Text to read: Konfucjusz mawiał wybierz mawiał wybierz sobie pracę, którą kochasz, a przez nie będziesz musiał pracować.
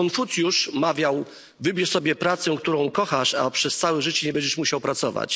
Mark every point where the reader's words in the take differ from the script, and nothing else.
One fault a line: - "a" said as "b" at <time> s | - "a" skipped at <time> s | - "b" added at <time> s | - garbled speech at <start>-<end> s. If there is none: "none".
- "mawiał wybierz" skipped at 1.9 s
- "całe życie" added at 3.8 s